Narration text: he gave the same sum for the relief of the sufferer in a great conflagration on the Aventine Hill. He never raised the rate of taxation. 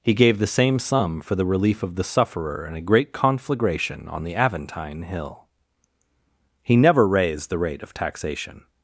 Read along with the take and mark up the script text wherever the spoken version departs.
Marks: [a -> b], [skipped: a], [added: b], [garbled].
he gave the same sum for the relief of the sufferer in a great conflagration on the Aventine Hill. He never raised the rate of taxation.